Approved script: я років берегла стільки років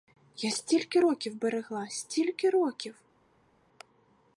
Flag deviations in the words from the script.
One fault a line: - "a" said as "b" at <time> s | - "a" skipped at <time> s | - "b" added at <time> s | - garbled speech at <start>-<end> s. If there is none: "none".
- "стільки" added at 0.5 s